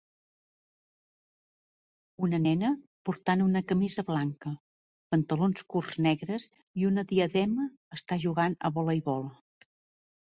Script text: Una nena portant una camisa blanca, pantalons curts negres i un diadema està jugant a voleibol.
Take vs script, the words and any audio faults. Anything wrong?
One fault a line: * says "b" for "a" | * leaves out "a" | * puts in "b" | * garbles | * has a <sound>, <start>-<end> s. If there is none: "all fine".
* says "una" for "un"